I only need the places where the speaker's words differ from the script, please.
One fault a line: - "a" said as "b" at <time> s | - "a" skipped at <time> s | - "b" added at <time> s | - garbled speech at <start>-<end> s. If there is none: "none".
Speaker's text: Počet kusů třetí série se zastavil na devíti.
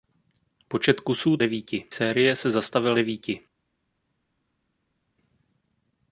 - "třetí" said as "devíti" at 1.4 s
- "na" skipped at 3.0 s